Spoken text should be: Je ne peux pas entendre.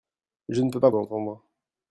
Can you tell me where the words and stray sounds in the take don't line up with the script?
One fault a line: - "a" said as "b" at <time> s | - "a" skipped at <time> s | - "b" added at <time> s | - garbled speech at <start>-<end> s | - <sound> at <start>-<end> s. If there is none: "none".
none